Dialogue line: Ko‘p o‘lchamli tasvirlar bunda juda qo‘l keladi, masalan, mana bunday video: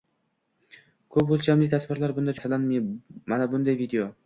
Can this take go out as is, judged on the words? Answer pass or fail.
fail